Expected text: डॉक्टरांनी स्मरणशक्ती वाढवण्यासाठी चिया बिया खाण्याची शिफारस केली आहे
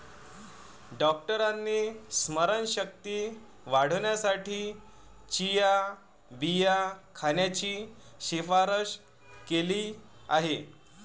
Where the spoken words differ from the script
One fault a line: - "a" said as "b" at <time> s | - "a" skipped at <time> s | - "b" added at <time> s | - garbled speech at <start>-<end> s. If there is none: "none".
none